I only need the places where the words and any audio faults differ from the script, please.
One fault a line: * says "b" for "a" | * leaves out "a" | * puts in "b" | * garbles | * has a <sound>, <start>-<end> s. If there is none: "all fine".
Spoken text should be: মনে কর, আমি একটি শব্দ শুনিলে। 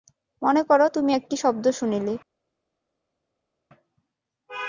* says "তুমি" for "আমি"